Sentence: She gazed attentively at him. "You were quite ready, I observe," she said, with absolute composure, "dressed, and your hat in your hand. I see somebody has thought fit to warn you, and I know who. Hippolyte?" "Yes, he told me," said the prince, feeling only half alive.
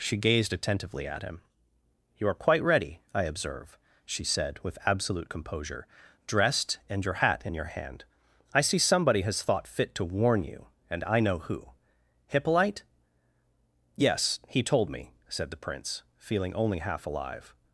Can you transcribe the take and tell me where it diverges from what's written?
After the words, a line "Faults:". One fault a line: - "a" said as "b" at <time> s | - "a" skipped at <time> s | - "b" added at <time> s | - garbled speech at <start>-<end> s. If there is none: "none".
She gazed attentively at him. "You are quite ready, I observe," she said, with absolute composure, "dressed, and your hat in your hand. I see somebody has thought fit to warn you, and I know who. Hippolyte?" "Yes, he told me," said the prince, feeling only half alive.
Faults:
- "were" said as "are" at 2.3 s